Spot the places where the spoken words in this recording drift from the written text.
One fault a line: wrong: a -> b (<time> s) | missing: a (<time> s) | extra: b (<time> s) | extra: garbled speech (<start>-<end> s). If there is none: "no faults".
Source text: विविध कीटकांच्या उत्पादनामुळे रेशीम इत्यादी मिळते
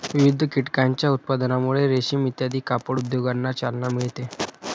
extra: कापड उद्योगांना चालना (2.6 s)